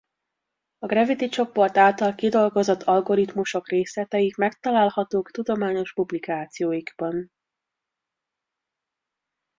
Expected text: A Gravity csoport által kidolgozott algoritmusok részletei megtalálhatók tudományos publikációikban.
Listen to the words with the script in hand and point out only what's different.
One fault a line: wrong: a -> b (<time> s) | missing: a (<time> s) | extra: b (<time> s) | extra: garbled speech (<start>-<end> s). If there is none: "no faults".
no faults